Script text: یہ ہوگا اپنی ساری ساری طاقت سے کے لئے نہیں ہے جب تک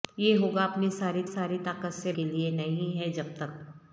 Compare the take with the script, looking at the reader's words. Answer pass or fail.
pass